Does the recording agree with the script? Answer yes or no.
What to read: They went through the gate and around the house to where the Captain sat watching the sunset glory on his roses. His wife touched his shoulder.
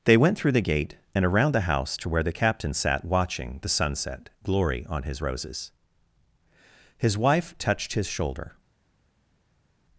yes